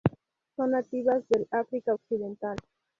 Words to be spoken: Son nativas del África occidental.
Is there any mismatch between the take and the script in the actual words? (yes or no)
no